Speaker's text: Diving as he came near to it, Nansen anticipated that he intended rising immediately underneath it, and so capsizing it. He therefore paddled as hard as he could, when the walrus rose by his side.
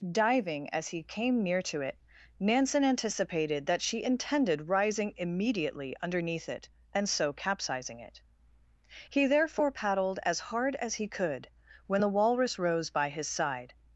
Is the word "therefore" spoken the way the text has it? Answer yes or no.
yes